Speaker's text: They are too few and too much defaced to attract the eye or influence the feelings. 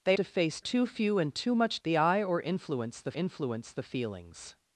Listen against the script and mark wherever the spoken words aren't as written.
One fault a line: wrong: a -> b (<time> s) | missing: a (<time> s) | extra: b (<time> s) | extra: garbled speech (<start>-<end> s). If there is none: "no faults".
wrong: are -> defaced (0.1 s)
missing: defaced to attract (1.8 s)
extra: influence the (3.1 s)